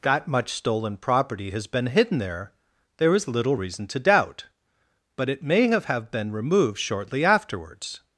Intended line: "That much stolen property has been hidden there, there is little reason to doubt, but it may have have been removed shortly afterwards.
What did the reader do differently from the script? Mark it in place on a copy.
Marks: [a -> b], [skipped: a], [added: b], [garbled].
"That much stolen property has been hidden there, there is little reason to doubt, but it may have have been removed shortly afterwards.